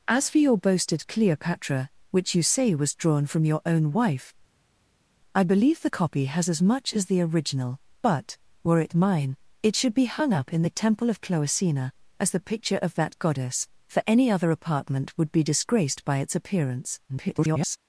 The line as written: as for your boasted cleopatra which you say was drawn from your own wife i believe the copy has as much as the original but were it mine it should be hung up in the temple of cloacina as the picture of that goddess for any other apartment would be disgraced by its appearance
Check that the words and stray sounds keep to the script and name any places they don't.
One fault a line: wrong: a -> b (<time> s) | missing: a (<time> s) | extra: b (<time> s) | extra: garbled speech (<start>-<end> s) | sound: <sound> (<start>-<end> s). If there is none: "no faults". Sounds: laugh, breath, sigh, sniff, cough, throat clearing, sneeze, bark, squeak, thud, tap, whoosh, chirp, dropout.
extra: garbled speech (17.1-17.8 s)